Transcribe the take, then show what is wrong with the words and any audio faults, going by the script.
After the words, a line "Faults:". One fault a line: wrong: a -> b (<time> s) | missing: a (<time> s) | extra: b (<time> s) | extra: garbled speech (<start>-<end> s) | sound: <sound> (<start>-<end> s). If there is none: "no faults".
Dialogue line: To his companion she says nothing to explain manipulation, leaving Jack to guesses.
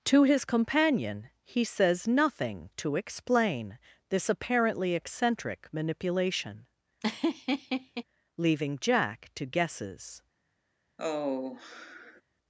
To his companion he says nothing to explain this apparently eccentric manipulation, leaving Jack to guesses.
Faults:
wrong: she -> he (1.4 s)
extra: this apparently eccentric (4.1 s)
sound: laugh (7.0-8.0 s)
sound: sigh (11.0-12.2 s)